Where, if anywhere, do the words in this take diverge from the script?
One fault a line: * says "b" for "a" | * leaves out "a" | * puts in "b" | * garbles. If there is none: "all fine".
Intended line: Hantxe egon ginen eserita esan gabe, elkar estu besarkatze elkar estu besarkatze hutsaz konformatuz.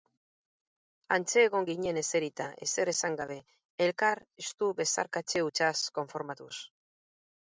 * puts in "ezer"
* leaves out "elkar estu besarkatze"